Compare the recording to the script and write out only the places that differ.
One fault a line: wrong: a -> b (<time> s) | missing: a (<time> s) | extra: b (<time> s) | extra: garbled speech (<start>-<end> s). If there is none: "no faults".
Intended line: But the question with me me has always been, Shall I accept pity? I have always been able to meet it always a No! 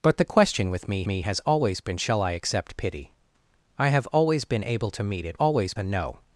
no faults